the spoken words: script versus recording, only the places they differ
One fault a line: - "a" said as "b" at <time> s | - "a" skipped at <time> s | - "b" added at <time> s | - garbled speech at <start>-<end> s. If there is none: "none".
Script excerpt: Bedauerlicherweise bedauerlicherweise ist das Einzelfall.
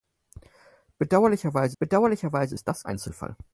none